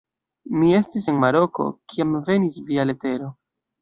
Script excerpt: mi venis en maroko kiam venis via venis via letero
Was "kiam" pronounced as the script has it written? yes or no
yes